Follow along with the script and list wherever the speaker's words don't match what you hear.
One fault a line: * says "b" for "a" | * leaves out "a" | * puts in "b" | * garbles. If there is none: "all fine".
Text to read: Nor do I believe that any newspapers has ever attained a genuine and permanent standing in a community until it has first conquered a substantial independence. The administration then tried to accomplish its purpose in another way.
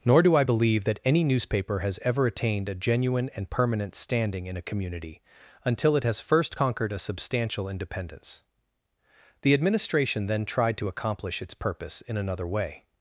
* says "newspaper" for "newspapers"